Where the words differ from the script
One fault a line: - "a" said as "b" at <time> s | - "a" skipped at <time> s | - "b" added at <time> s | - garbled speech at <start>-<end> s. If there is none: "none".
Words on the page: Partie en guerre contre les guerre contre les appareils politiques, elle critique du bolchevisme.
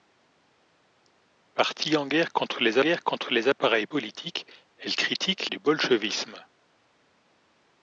none